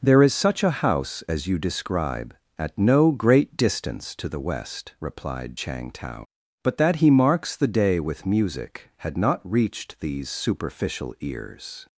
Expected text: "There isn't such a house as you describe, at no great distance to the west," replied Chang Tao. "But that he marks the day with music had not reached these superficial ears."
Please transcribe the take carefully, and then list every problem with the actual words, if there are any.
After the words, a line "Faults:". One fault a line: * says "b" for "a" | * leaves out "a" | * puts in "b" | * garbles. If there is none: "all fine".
"There is such a house as you describe, at no great distance to the west," replied Chang Tao. "But that he marks the day with music had not reached these superficial ears."
Faults:
* says "is" for "isn't"